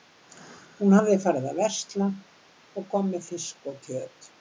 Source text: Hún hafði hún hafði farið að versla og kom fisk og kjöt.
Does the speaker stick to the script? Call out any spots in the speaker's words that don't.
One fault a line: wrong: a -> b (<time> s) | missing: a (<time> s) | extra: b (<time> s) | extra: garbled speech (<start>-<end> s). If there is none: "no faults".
missing: hún hafði (1.2 s)
extra: með (3.2 s)